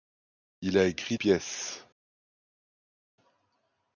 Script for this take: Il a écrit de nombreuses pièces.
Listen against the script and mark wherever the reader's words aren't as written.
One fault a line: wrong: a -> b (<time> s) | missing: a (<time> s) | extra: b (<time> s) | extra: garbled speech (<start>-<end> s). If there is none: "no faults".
missing: de nombreuses (1.2 s)